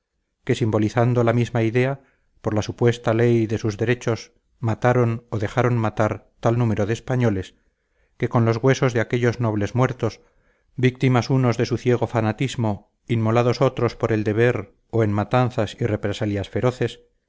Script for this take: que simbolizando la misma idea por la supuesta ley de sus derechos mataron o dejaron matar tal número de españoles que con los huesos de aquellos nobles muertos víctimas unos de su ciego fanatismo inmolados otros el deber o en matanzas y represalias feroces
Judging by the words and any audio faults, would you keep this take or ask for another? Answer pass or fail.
fail